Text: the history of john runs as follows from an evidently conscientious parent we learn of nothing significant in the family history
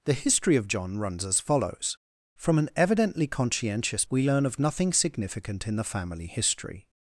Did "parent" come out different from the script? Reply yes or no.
yes